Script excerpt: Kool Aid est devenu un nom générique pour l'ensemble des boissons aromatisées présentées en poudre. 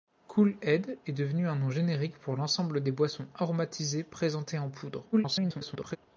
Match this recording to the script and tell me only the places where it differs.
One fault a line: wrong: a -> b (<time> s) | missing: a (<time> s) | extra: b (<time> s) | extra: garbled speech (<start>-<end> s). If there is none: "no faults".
extra: garbled speech (5.1-6.0 s)